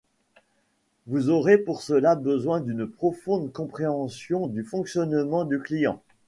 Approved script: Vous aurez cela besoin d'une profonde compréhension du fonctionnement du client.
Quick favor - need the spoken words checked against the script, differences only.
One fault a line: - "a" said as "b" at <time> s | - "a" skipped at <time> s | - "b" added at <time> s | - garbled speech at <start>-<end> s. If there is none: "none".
- "pour" added at 1.6 s